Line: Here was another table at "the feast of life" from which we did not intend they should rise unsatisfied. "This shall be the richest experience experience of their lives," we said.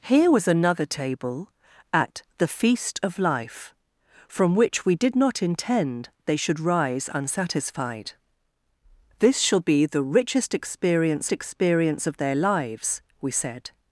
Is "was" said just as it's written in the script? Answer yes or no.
yes